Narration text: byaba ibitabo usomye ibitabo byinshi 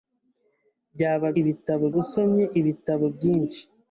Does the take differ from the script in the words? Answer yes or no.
no